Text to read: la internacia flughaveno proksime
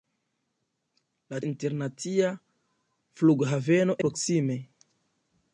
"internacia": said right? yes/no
yes